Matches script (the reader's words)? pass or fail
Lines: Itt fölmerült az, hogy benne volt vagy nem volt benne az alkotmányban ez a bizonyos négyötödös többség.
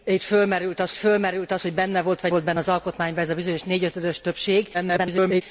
fail